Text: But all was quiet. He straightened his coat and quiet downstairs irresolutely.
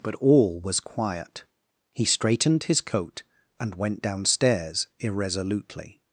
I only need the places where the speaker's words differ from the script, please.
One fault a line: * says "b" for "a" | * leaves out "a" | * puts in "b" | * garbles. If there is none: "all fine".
* says "went" for "quiet"